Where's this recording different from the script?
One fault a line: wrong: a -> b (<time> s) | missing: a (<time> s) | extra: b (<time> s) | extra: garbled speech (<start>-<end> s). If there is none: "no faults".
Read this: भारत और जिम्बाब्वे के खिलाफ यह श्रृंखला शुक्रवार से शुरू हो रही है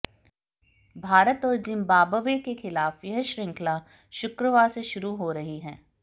no faults